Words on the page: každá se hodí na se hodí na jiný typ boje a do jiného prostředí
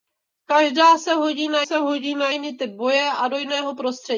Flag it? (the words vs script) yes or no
no